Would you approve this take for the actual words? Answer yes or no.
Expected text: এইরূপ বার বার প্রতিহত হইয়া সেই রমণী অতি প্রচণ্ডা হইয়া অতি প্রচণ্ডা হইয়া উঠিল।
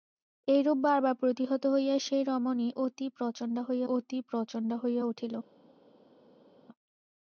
yes